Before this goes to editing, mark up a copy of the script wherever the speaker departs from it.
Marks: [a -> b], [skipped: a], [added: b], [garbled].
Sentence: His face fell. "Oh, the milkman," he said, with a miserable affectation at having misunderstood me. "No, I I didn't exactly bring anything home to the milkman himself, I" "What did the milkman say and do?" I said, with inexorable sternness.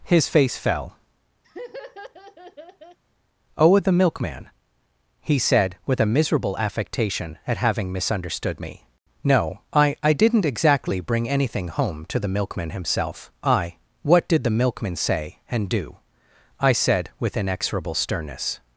His face fell. "Oh, the milkman," he said, with a miserable affectation at having misunderstood me. "No, I I didn't exactly bring anything home to the milkman himself, I" "What did the milkman say and do?" I said, with inexorable sternness.